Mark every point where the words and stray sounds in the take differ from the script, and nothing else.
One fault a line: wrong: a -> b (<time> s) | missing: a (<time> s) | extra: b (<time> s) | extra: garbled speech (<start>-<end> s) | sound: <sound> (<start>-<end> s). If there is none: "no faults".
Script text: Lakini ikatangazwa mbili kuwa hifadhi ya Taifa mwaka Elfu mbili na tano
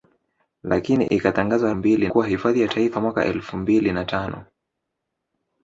no faults